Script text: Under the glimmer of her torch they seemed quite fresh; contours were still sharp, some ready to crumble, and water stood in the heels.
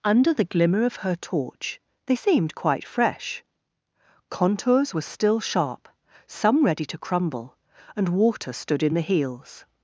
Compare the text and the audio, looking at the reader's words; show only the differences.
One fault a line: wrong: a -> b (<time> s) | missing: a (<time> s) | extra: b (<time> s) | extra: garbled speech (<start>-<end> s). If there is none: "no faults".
no faults